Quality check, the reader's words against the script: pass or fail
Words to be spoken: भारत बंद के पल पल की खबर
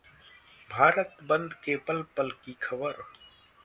pass